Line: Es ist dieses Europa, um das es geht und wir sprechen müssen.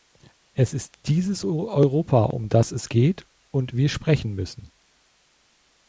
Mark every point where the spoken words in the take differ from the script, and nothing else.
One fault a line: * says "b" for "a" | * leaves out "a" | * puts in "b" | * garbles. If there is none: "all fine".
all fine